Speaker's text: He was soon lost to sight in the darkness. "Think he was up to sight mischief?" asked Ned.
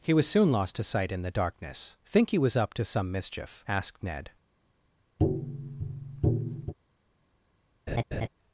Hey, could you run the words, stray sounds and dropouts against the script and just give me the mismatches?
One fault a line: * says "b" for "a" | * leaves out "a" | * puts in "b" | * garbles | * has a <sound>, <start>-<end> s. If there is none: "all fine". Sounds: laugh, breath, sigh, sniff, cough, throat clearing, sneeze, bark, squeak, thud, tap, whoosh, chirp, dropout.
* says "some" for "sight"
* has a tap, 5.2-6.7 s
* has a laugh, 7.9-8.3 s